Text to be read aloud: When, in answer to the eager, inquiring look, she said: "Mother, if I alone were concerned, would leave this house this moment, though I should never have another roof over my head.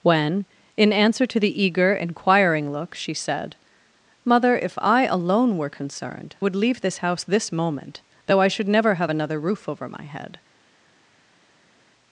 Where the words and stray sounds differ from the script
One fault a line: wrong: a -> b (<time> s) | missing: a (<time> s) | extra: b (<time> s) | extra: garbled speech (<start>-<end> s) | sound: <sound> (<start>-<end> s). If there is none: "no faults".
no faults